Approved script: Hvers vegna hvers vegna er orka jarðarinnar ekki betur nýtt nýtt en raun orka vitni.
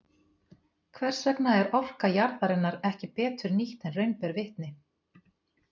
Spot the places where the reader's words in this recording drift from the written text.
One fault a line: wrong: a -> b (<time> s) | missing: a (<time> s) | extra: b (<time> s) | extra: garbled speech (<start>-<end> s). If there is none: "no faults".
missing: hvers vegna (1.5 s)
missing: nýtt (3.9 s)
wrong: orka -> ber (4.2 s)